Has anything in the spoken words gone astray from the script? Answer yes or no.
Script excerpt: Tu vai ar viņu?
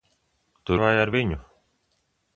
no